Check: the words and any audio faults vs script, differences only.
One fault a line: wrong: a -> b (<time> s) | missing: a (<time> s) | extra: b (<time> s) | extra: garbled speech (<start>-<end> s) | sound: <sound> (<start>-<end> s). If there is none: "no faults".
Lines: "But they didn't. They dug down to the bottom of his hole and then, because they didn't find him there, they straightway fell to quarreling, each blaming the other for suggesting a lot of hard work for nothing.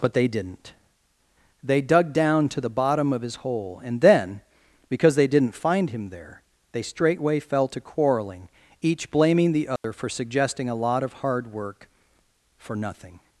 sound: dropout (9.8-9.8 s)